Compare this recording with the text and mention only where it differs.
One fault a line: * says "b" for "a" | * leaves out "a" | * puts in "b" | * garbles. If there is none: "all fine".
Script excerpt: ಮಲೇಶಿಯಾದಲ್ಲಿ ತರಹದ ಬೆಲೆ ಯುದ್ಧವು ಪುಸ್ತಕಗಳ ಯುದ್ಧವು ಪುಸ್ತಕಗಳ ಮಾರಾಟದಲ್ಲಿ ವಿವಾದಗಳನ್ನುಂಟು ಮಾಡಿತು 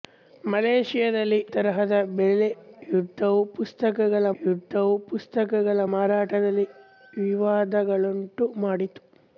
all fine